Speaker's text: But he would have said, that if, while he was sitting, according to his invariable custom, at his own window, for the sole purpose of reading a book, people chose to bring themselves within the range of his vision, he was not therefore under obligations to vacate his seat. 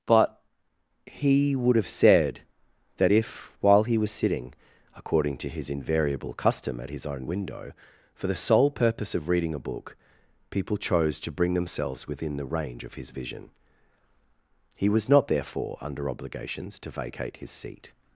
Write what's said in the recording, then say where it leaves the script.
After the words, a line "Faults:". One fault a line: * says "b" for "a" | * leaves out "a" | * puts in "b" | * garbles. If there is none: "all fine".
But he would have said, that if, while he was sitting, according to his invariable custom, at his own window, for the sole purpose of reading a book, people chose to bring themselves within the range of his vision, he was not therefore under obligations to vacate his seat.
Faults:
all fine